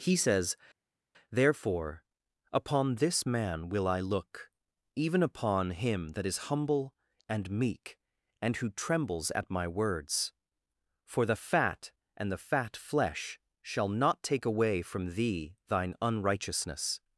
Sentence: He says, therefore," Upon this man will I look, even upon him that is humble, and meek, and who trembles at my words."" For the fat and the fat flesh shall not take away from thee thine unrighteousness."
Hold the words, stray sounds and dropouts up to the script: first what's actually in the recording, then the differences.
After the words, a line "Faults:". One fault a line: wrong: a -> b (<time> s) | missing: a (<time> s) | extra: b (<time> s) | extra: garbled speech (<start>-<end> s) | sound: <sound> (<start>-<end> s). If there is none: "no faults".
He says, therefore," Upon this man will I look, even upon him that is humble, and meek, and who trembles at my words."" For the fat and the fat flesh shall not take away from thee thine unrighteousness."
Faults:
no faults